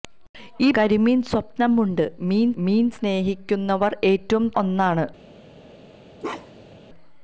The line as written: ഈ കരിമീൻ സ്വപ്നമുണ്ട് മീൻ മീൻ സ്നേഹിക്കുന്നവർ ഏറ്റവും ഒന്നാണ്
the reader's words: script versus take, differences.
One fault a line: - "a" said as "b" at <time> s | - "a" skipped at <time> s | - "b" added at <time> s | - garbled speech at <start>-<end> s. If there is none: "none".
none